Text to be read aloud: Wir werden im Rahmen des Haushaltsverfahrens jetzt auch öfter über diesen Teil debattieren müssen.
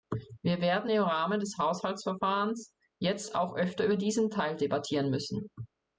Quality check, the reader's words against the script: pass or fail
pass